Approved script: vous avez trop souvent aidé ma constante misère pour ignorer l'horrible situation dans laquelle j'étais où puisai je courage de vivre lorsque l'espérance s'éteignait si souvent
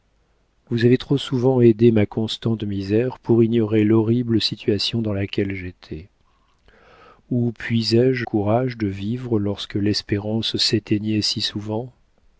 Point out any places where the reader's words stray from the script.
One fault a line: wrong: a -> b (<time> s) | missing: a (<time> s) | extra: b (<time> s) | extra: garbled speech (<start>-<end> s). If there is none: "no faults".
no faults